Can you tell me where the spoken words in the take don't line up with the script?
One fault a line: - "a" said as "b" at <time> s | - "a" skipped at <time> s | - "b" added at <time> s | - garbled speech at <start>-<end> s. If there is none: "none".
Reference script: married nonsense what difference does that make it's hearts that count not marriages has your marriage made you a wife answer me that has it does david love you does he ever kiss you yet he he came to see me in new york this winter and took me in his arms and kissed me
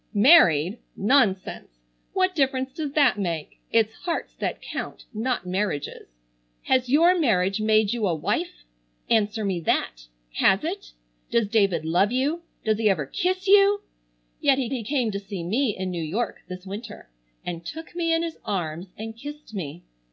none